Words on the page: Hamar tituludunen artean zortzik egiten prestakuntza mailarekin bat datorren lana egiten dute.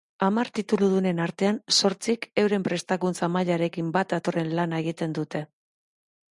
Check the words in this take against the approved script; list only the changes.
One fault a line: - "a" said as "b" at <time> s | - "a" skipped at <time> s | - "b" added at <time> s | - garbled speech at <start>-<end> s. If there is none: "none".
- "egiten" said as "euren" at 2.5 s